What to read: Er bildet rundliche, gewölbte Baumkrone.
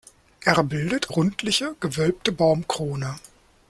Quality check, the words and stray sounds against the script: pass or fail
pass